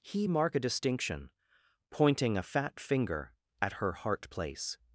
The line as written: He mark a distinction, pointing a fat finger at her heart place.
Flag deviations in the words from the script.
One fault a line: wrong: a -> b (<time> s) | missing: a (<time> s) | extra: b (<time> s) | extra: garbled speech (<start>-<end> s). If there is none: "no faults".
no faults